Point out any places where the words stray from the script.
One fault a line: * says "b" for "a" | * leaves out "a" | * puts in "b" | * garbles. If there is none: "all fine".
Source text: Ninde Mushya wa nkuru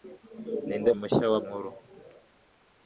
all fine